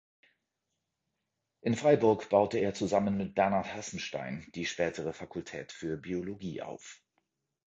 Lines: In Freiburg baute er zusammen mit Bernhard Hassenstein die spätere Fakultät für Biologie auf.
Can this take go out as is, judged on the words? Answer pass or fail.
pass